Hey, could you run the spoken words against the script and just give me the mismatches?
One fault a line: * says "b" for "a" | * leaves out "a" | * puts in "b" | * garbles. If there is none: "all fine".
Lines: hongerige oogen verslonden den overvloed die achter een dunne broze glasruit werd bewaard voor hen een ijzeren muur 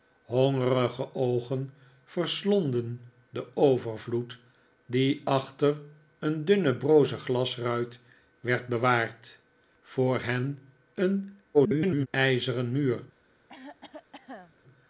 * garbles